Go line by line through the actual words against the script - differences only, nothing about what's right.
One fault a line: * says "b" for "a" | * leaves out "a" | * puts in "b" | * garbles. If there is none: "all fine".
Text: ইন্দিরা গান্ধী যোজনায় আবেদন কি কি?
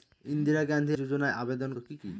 all fine